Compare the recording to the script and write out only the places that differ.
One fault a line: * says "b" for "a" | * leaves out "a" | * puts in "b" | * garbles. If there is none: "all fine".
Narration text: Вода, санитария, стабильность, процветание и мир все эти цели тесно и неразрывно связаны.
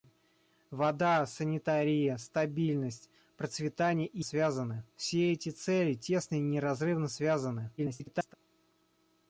* says "связаны" for "мир"
* garbles